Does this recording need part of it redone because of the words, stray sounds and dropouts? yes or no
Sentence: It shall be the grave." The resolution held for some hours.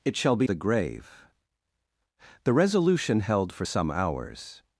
no